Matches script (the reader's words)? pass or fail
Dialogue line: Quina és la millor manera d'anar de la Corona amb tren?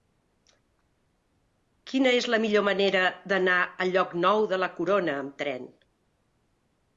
fail